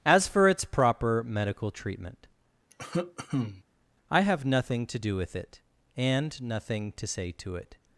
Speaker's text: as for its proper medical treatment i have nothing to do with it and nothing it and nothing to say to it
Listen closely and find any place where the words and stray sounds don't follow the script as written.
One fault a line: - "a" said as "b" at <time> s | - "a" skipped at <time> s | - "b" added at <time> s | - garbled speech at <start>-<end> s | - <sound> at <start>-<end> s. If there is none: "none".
- cough at 2.7-3.6 s
- "it and nothing" skipped at 6.9 s